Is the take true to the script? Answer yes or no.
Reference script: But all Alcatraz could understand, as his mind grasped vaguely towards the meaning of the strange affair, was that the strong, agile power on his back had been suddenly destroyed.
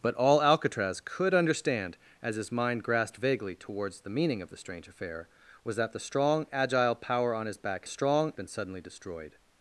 no